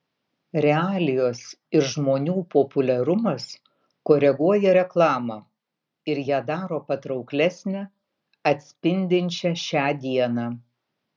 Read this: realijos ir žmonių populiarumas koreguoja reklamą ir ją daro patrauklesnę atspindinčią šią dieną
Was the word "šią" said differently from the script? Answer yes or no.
no